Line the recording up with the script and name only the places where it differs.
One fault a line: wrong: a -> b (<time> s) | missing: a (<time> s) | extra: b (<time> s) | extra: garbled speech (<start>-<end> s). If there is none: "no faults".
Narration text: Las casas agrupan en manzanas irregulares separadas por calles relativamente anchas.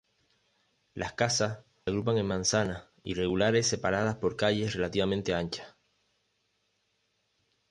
no faults